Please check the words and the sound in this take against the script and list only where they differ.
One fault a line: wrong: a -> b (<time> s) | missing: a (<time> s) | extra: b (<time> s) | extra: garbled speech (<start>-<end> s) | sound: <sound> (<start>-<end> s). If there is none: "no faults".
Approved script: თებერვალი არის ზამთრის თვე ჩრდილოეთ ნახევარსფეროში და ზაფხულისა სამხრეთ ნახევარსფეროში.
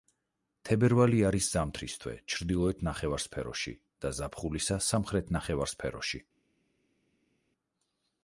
no faults